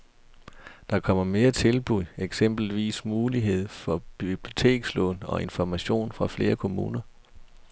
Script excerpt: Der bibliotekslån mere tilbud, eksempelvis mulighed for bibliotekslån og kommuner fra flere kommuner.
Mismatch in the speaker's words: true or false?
true